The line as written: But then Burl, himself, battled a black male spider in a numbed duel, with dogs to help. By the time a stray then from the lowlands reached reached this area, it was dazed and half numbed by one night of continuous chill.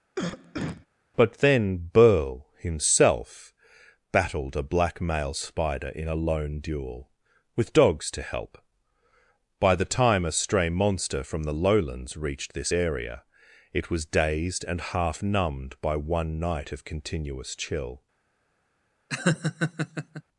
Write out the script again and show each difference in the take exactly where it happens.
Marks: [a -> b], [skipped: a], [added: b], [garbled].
But then Burl, himself, battled a black male spider in a [numbed -> lone] duel, with dogs to help. By the time a stray [then -> monster] from the lowlands reached [skipped: reached] this area, it was dazed and half numbed by one night of continuous chill.